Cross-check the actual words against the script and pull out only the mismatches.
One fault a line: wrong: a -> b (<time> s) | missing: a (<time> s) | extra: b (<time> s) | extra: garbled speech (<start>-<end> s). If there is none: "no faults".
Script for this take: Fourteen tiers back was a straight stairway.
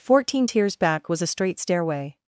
no faults